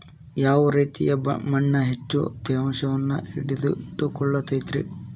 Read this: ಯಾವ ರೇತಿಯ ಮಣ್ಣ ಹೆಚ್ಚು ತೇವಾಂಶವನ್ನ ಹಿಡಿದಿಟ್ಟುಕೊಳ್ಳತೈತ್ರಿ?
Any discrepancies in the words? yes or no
no